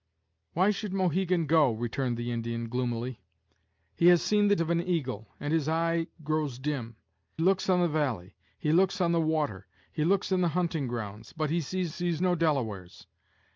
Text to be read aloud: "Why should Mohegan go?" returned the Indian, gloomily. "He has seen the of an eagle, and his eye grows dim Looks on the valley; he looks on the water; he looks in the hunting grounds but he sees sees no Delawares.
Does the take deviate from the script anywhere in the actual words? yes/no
no